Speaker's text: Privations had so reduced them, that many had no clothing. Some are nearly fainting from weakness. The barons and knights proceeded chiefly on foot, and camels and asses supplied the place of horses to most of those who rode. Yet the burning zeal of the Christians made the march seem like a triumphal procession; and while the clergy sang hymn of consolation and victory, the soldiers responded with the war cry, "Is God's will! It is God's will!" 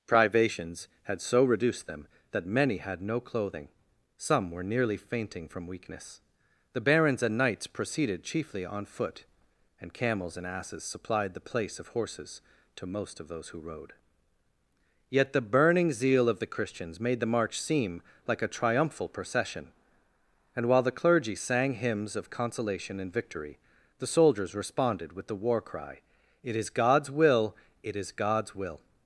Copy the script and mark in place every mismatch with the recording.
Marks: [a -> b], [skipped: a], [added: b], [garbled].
Privations had so reduced them, that many had no clothing. Some [are -> were] nearly fainting from weakness. The barons and knights proceeded chiefly on foot, and camels and asses supplied the place of horses to most of those who rode. Yet the burning zeal of the Christians made the march seem like a triumphal procession; and while the clergy sang [hymn -> hymns] of consolation and victory, the soldiers responded with the war cry, [added: It] "Is God's will! It is God's will!"